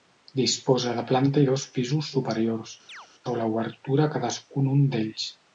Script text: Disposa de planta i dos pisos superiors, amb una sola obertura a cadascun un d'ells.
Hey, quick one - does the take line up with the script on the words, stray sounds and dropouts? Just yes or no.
no